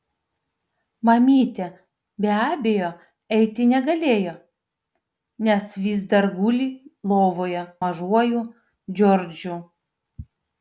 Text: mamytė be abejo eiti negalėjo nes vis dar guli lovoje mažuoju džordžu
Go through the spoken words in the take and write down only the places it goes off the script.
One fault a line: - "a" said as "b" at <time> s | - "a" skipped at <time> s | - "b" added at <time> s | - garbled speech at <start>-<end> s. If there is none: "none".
none